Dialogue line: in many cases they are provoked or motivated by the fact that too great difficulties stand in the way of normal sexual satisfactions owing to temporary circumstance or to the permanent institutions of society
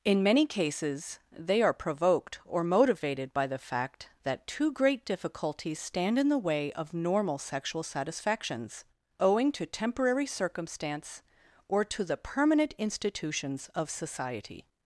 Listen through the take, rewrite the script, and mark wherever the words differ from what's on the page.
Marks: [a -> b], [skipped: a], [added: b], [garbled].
in many cases they are provoked or motivated by the fact that too great difficulties stand in the way of normal sexual satisfactions owing to temporary circumstance or to the permanent institutions of society